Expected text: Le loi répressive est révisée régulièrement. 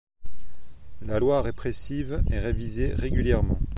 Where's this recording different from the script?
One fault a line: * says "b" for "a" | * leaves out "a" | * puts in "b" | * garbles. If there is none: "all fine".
* says "La" for "Le"